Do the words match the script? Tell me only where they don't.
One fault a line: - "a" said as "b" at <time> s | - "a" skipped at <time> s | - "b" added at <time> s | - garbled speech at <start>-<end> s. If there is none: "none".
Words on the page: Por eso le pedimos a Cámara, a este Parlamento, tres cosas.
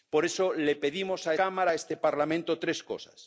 none